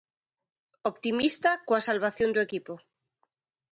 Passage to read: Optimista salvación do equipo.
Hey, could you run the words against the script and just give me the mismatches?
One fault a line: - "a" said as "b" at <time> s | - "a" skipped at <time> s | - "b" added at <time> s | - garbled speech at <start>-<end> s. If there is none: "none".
- "coa" added at 1.7 s